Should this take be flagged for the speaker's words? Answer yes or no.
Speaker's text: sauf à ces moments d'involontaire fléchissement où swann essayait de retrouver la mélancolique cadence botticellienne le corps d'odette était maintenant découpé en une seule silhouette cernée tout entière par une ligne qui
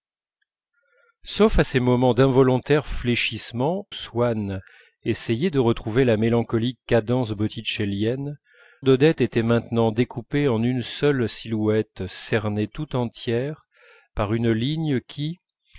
yes